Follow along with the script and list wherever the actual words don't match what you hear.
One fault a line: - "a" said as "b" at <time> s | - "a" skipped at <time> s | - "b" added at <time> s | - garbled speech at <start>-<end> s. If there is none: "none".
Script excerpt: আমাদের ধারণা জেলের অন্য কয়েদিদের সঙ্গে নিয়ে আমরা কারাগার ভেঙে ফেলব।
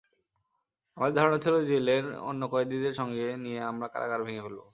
- "ছিল" added at 1.4 s